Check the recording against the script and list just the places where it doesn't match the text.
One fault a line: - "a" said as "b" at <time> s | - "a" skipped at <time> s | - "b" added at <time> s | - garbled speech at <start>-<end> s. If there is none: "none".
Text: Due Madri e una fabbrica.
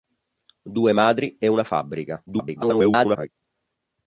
- garbled speech at 2.3-3.3 s